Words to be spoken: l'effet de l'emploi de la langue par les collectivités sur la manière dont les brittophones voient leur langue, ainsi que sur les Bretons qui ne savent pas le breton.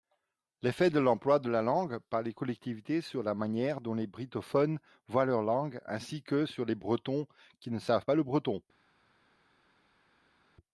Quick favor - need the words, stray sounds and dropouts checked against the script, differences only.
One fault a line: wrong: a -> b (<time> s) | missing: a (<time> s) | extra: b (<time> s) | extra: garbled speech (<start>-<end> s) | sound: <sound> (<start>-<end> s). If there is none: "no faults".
no faults